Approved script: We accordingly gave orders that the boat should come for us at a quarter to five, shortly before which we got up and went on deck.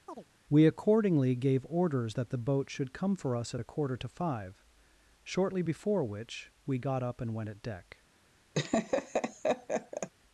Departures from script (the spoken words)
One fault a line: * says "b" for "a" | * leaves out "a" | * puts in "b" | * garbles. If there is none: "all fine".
* says "at" for "on"